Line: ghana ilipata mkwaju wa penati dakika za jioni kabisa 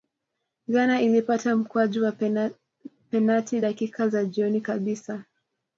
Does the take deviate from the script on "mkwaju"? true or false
false